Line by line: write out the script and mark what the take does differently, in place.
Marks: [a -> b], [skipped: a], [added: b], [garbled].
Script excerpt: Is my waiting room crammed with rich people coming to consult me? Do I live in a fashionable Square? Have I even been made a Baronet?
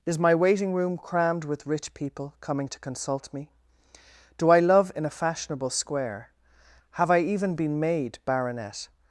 Is my waiting room crammed with rich people coming to consult me? Do I [live -> love] in a fashionable Square? Have I even been made [skipped: a] Baronet?